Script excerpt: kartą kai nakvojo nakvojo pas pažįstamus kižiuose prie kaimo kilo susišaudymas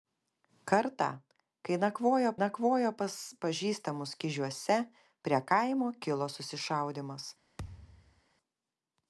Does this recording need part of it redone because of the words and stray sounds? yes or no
yes